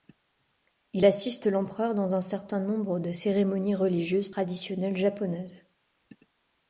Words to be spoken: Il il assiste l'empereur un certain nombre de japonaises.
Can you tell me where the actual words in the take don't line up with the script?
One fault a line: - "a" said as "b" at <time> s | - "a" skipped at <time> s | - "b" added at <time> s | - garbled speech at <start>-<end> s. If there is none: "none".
- "il" skipped at 1.1 s
- "dans" added at 1.9 s
- "cérémonies religieuses traditionnelles" added at 3.1 s